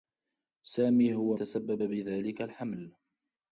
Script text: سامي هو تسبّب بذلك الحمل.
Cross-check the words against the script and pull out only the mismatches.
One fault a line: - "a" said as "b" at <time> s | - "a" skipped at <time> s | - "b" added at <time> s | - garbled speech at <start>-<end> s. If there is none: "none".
none